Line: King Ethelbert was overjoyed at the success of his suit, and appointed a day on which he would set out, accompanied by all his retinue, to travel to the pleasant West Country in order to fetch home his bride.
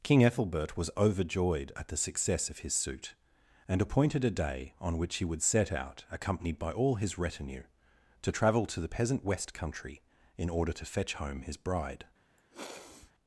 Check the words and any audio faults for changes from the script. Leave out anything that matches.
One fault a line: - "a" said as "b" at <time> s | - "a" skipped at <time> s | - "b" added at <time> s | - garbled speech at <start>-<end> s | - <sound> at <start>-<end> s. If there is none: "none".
- "pleasant" said as "peasant" at 8.9 s
- sniff at 12.4-13.1 s